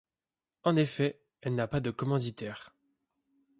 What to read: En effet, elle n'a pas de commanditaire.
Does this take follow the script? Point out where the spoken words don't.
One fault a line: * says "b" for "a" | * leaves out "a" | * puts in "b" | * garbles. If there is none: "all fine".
all fine